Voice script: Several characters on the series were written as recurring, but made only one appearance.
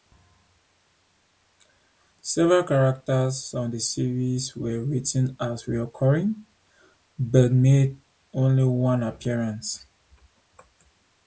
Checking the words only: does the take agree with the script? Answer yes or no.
yes